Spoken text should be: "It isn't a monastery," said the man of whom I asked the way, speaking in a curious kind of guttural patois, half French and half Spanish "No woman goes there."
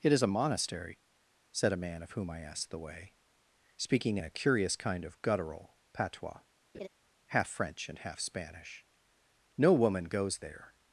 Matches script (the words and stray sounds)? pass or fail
fail